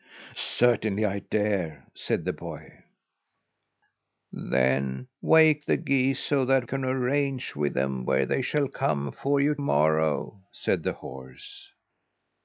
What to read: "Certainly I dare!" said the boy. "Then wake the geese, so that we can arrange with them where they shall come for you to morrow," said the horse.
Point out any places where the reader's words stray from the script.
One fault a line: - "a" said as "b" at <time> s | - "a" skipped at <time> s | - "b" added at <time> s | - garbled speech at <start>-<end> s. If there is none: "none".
- "we" skipped at 6.7 s
- "to" skipped at 9.5 s